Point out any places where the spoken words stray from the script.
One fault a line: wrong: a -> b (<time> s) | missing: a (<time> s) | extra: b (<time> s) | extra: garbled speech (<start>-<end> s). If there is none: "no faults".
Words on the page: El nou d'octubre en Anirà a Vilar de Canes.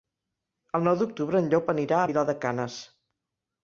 extra: Llop (1.5 s)